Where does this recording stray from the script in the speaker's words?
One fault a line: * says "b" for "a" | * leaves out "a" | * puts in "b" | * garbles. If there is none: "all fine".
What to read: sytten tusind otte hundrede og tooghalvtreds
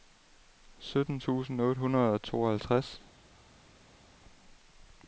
all fine